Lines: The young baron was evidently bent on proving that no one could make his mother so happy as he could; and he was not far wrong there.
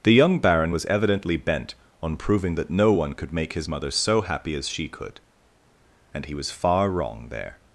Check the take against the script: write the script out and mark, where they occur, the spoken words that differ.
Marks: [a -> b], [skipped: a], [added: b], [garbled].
The young baron was evidently bent on proving that no one could make his mother so happy as [he -> she] could; and he was [skipped: not] far wrong there.